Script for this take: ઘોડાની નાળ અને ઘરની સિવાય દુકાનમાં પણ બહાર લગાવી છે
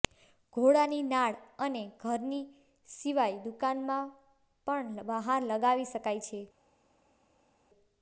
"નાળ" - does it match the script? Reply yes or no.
yes